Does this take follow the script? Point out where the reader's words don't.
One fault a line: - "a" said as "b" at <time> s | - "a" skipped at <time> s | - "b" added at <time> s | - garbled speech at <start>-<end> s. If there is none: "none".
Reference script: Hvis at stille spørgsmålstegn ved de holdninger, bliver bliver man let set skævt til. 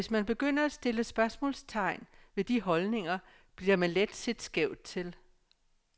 - "man begynder" added at 0.1 s
- "bliver" skipped at 3.8 s